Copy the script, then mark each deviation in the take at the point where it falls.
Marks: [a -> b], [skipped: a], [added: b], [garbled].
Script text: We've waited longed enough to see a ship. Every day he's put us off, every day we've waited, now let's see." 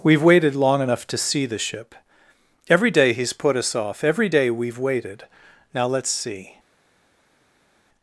We've waited [longed -> long] enough to see [a -> the] ship. Every day he's put us off, every day we've waited, now let's see."